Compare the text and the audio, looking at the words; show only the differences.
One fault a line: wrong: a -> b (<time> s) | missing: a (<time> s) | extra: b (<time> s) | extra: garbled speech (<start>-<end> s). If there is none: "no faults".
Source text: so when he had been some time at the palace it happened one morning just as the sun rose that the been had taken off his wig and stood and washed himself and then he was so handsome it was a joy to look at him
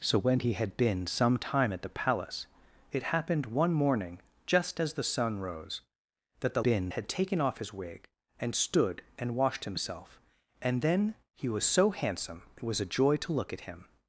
no faults